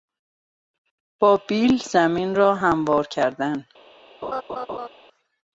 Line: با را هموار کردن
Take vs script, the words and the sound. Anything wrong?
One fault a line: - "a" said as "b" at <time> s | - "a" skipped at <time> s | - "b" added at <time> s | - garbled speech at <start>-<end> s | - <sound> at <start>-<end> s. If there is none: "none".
- "بیل زمین" added at 1.5 s
- laugh at 4.2-4.9 s